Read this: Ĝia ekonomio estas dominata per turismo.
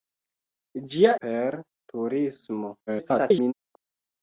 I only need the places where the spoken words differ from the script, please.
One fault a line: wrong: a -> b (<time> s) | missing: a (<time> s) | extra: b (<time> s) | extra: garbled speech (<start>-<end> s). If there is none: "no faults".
missing: ekonomio estas dominata (1.1 s)
extra: garbled speech (2.9-3.5 s)